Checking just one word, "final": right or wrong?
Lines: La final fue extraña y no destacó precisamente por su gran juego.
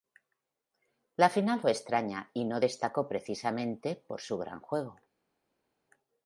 right